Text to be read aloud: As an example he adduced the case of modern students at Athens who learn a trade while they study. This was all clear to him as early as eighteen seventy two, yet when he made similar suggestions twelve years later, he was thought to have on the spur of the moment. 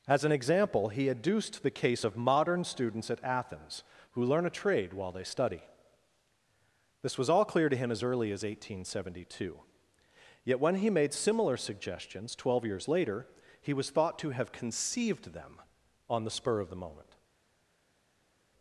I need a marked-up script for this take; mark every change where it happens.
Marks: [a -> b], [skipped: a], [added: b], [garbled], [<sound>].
As an example he adduced the case of modern students at Athens who learn a trade while they study. This was all clear to him as early as eighteen seventy two, yet when he made similar suggestions twelve years later, he was thought to have [added: conceived them] on the spur of the moment.